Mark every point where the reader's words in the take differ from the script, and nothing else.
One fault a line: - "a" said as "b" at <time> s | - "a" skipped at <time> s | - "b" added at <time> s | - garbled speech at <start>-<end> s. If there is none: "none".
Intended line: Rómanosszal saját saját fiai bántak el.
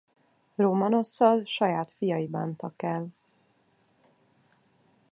- "saját" skipped at 1.9 s